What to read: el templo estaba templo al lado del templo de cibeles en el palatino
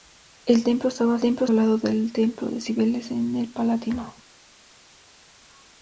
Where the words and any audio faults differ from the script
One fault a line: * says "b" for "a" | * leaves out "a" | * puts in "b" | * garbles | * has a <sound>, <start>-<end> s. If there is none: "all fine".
all fine